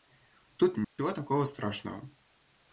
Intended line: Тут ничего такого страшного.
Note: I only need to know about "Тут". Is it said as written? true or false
true